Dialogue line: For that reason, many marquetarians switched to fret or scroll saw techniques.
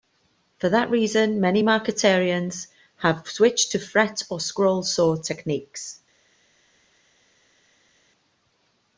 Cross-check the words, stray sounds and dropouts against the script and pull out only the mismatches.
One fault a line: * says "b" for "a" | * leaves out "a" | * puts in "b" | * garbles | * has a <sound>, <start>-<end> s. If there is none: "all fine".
* puts in "have"